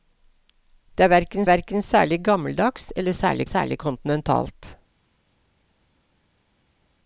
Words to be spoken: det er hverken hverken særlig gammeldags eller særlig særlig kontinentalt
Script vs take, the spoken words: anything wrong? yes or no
no